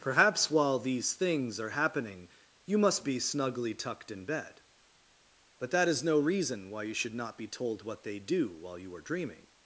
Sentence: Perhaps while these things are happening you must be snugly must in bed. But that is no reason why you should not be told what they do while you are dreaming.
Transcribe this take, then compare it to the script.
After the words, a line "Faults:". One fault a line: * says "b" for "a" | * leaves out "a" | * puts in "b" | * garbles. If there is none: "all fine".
Perhaps while these things are happening you must be snugly tucked in bed. But that is no reason why you should not be told what they do while you are dreaming.
Faults:
* says "tucked" for "must"